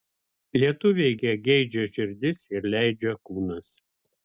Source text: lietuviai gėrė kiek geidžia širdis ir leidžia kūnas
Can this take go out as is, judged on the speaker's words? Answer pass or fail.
fail